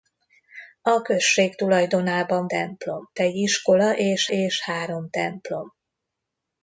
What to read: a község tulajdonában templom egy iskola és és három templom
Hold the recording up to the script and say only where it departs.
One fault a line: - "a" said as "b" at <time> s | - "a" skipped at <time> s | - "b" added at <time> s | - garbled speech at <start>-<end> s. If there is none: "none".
none